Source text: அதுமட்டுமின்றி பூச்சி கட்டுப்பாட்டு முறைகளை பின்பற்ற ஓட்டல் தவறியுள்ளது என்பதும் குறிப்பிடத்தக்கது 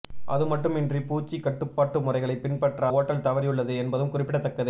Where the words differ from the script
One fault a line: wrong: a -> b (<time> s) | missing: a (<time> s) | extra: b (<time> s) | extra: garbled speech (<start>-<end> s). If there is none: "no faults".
no faults